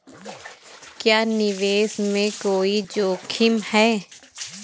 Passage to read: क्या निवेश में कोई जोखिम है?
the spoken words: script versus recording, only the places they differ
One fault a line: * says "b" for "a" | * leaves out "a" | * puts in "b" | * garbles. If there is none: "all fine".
all fine